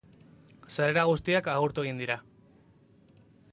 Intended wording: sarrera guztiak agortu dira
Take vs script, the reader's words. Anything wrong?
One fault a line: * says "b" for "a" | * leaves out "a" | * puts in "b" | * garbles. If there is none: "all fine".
* puts in "egin"